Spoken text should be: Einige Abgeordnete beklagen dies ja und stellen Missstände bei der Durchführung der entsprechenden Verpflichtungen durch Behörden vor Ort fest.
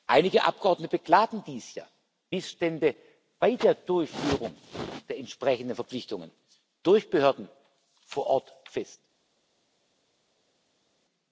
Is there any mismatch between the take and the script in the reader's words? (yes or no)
yes